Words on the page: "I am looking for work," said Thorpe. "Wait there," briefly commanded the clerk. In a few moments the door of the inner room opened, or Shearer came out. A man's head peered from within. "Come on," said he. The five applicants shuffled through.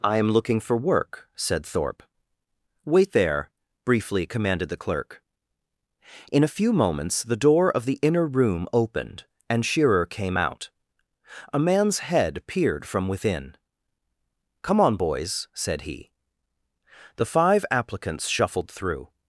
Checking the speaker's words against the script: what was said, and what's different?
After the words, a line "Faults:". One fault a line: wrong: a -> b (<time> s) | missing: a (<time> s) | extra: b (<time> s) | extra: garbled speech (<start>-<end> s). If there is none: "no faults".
"I am looking for work," said Thorpe. "Wait there," briefly commanded the clerk. In a few moments the door of the inner room opened, and Shearer came out. A man's head peered from within. "Come on, boys," said he. The five applicants shuffled through.
Faults:
wrong: or -> and (9.5 s)
extra: boys (15.0 s)